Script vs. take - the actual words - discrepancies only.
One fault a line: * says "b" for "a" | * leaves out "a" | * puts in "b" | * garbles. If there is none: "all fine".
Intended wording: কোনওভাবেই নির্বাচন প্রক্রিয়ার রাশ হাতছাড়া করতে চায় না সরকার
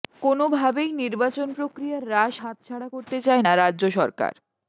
* puts in "রাজ্য"